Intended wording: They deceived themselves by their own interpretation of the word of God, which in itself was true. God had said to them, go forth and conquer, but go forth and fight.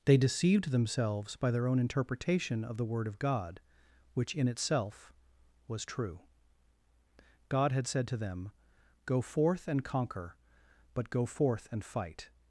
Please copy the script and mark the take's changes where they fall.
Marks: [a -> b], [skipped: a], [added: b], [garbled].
They deceived themselves by their own interpretation of the word of God, which in itself was true. God had said to them, go forth and conquer, but go forth and fight.